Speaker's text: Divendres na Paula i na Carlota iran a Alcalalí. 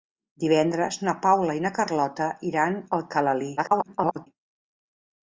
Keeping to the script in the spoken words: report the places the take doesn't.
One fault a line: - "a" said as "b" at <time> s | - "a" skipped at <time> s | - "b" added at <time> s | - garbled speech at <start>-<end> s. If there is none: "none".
- garbled speech at 3.6-4.3 s